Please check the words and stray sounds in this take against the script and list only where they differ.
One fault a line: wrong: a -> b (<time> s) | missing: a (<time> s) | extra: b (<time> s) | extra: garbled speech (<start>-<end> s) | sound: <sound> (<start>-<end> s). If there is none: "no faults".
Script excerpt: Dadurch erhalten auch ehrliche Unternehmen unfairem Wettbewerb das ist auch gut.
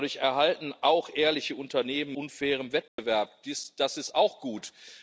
sound: dropout (2.9-3.0 s)